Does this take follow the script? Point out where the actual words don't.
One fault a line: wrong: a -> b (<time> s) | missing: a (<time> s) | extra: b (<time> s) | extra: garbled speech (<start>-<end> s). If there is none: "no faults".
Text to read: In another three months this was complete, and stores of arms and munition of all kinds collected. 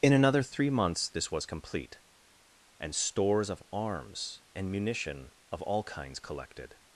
no faults